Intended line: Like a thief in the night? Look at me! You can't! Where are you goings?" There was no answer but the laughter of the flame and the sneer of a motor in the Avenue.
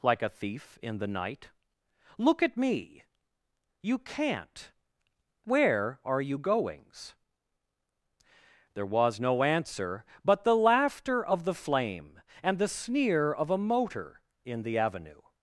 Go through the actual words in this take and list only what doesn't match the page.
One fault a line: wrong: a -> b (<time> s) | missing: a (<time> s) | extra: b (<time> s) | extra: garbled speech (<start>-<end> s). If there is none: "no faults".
no faults